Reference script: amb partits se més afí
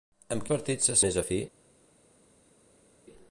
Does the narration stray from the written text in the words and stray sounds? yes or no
no